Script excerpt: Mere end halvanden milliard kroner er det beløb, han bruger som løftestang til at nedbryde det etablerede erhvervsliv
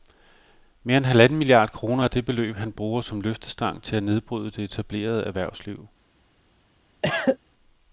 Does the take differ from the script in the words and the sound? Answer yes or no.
yes